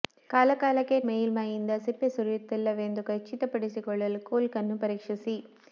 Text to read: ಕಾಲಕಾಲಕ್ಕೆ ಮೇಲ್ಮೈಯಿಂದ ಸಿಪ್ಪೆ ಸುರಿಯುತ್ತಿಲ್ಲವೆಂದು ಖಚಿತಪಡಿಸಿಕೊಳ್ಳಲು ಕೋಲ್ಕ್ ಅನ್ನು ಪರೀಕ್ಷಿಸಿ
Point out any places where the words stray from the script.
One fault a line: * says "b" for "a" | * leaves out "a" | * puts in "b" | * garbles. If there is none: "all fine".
all fine